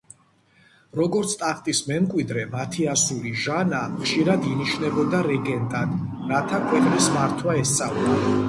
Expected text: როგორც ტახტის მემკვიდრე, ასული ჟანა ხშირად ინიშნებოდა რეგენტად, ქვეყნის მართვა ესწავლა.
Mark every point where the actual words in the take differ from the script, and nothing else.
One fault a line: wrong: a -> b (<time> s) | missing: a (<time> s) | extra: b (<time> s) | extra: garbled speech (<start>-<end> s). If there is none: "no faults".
extra: მათი (2.5 s)
extra: რათა (6.3 s)